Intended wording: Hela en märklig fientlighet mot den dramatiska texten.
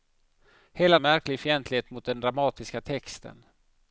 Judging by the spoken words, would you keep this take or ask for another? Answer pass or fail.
pass